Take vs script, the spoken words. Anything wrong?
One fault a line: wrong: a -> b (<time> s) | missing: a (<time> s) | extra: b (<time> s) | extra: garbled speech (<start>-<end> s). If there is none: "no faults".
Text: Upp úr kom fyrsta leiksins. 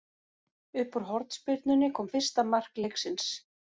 extra: hornspyrnunni (1.1 s)
extra: mark (2.5 s)